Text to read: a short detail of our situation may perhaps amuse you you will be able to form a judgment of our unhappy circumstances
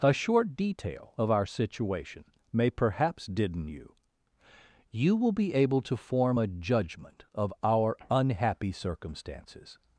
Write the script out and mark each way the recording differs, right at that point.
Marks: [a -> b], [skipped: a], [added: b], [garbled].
a short detail of our situation may perhaps [amuse -> didden] you you will be able to form a judgment of our unhappy circumstances